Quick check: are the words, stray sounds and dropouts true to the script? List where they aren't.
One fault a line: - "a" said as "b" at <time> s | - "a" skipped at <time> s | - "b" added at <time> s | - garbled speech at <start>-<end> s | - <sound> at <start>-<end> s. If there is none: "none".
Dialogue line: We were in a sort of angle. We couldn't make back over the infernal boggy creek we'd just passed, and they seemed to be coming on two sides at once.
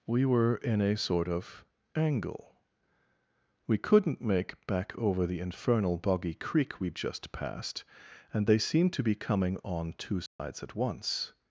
- dropout at 10.3-10.4 s